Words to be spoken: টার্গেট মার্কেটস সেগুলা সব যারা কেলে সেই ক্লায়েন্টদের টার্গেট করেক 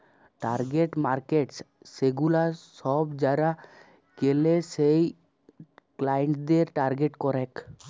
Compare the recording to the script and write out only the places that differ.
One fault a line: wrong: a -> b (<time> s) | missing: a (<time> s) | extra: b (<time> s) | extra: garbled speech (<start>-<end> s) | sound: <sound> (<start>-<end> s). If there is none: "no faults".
no faults